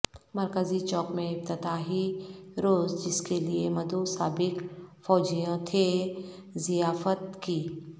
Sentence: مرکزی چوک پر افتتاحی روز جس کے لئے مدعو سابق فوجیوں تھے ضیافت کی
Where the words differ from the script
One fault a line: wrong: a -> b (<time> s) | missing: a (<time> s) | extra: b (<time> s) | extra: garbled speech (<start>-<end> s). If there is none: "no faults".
wrong: پر -> میں (1.1 s)